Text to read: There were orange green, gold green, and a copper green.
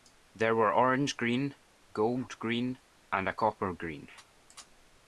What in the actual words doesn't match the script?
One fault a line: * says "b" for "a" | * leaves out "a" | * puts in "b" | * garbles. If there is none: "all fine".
all fine